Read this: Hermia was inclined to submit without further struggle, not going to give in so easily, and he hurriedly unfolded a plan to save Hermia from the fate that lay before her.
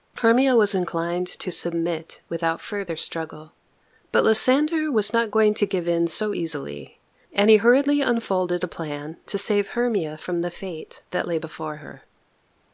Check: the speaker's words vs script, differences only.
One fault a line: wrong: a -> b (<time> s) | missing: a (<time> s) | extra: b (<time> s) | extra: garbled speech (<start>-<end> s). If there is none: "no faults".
extra: but Lysander was (4.1 s)